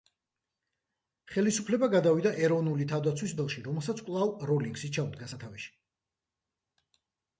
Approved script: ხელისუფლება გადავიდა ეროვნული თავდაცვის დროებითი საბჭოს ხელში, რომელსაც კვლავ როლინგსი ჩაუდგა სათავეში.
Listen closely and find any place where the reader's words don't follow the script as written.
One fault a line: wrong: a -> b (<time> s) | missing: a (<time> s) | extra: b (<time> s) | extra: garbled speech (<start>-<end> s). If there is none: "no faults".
missing: დროებითი საბჭოს (3.4 s)